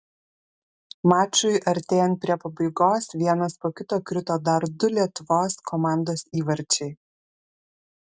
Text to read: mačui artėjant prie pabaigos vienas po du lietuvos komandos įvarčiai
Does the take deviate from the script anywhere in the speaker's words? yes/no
yes